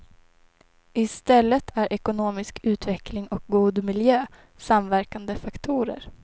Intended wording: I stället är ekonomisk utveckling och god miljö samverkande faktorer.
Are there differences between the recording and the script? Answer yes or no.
no